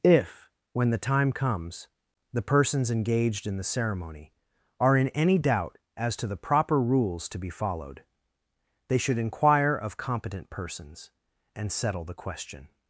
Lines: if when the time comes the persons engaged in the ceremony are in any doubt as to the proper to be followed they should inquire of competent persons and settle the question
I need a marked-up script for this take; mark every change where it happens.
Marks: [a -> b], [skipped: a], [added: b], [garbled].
if when the time comes the persons engaged in the ceremony are in any doubt as to the proper [added: rules] to be followed they should inquire of competent persons and settle the question